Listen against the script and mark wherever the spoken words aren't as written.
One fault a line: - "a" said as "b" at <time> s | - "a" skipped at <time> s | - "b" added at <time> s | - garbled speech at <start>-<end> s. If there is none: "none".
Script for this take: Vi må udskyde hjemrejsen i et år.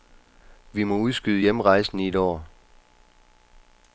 none